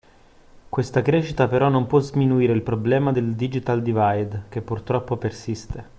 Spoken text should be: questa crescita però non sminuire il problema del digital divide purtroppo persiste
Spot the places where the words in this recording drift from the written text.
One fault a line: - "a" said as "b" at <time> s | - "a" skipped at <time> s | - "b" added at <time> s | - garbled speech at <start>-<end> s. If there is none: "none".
- "può" added at 1.9 s
- "che" added at 4.5 s